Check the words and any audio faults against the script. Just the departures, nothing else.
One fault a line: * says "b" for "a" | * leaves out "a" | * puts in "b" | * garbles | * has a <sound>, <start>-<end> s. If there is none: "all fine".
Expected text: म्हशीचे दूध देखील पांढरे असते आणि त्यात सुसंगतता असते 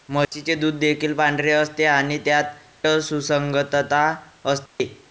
* has a dropout, 4.7-4.8 s